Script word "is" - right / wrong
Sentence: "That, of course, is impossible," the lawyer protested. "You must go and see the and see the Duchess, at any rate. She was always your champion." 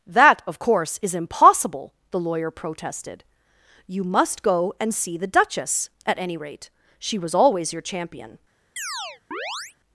right